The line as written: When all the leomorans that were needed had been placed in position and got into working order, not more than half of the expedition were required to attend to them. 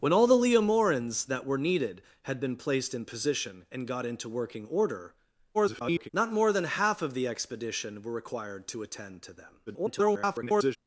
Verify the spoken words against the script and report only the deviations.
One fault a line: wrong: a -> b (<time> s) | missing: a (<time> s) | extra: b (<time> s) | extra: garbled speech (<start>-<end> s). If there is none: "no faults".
extra: garbled speech (5.5-6.1 s)
extra: garbled speech (9.7-10.8 s)